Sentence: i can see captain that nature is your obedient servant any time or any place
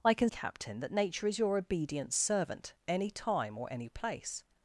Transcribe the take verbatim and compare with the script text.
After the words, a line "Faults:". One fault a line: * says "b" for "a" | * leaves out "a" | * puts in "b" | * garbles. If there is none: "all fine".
i can captain that nature is your obedient servant any time or any place
Faults:
* leaves out "see"